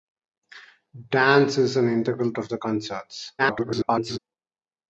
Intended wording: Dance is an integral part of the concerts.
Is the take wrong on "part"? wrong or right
wrong